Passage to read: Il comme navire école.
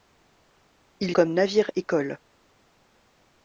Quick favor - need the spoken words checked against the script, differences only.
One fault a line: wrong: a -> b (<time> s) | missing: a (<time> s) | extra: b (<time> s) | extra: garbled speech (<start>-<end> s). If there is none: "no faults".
no faults